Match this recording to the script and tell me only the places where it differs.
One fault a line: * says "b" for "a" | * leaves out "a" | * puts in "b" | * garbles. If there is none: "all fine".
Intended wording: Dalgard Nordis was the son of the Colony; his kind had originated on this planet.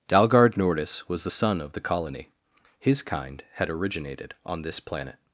all fine